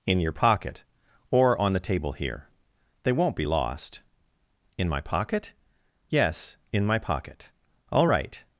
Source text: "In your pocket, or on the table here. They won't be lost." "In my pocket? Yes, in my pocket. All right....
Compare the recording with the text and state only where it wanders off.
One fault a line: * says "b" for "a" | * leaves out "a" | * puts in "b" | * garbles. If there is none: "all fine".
all fine